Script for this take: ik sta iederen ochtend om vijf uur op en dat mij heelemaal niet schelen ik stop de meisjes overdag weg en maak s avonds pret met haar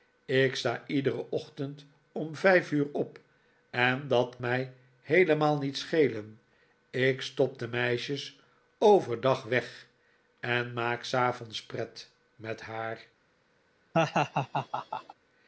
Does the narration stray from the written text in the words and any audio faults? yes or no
yes